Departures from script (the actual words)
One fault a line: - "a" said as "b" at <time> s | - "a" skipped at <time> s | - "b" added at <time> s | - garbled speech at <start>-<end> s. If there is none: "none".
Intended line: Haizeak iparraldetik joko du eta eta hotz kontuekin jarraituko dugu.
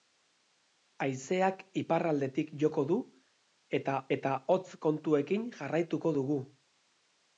none